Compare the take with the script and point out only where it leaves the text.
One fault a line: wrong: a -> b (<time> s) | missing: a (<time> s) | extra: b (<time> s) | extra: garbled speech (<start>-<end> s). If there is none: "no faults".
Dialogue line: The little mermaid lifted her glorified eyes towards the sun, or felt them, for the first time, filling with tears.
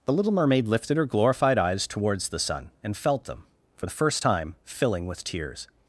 wrong: or -> and (2.8 s)